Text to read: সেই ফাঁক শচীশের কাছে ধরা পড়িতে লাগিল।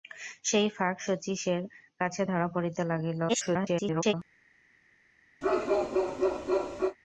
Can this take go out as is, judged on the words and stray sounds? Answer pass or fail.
fail